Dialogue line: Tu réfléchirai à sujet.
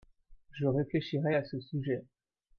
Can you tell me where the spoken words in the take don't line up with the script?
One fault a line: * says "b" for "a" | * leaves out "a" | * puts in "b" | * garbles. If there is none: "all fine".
* says "Je" for "Tu"
* puts in "ce"